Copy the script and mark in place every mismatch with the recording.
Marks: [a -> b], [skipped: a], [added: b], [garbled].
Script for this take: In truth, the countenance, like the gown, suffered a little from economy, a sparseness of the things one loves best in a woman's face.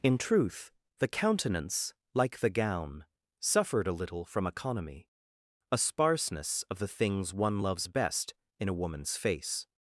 In truth, the countenance, like the gown, suffered a little from economy, a sparseness of the things one loves best in a woman's face.